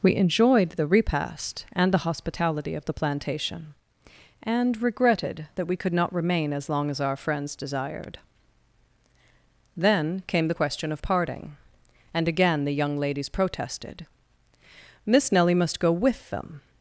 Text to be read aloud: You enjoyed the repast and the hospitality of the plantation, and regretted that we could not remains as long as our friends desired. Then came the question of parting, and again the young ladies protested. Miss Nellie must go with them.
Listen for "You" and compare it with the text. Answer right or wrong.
wrong